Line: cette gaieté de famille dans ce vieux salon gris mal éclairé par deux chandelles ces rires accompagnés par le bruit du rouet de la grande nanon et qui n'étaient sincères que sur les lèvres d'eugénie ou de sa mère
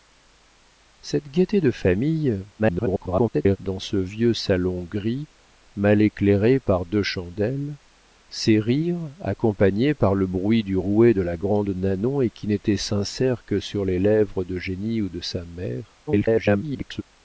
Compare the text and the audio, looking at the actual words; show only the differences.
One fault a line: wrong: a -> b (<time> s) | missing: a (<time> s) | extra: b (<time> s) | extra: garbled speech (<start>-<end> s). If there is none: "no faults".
extra: garbled speech (2.6-3.6 s)
extra: garbled speech (16.1-17.0 s)